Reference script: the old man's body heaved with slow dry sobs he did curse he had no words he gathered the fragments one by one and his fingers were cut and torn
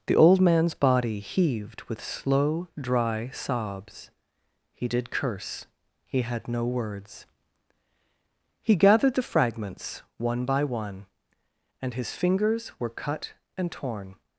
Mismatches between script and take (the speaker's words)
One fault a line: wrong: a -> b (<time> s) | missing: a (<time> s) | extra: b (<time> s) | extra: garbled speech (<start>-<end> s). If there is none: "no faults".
no faults